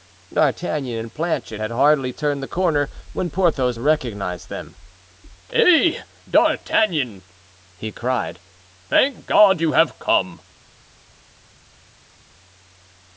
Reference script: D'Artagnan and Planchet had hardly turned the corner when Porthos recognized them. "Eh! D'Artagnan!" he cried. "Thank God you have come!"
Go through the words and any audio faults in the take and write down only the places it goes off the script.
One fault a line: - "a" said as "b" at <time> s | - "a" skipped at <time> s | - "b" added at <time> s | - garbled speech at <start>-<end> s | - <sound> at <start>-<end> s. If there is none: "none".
none